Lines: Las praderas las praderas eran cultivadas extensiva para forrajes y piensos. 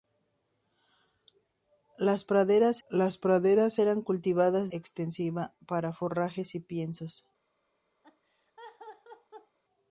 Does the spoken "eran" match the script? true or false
true